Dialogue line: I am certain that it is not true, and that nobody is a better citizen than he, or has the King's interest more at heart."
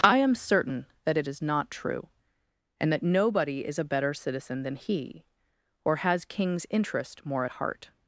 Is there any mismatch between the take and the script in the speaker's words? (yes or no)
yes